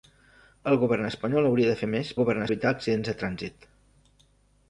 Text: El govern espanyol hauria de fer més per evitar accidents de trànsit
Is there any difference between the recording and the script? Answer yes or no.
yes